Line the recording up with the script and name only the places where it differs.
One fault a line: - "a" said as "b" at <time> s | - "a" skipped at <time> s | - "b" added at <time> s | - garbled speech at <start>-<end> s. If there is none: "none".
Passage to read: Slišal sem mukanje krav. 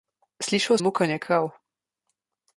- "sem" skipped at 0.8 s